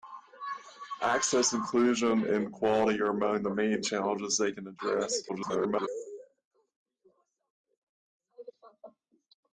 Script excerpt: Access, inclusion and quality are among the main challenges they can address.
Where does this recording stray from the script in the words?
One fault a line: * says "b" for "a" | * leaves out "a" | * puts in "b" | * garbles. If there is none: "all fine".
* garbles